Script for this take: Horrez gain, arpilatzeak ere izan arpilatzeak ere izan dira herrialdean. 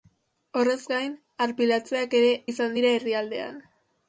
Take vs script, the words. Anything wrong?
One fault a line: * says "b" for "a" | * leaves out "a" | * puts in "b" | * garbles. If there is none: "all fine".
* leaves out "arpilatzeak ere izan"